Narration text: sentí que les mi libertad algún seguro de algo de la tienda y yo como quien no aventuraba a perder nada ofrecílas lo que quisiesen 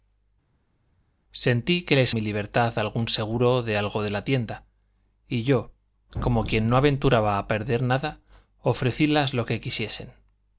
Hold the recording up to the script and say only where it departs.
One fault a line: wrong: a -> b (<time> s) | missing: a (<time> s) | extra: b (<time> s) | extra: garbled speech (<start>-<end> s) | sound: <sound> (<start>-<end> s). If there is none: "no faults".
no faults